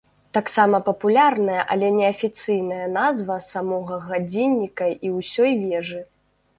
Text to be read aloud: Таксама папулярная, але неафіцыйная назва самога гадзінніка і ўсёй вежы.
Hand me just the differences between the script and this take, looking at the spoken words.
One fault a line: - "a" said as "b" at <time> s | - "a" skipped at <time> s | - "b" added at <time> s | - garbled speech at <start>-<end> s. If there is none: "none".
none